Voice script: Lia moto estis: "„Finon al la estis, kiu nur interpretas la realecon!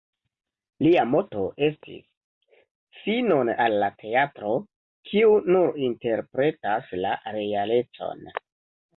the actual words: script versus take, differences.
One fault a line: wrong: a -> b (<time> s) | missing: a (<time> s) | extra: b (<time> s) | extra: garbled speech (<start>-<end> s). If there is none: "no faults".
wrong: estis -> teatro (4.0 s)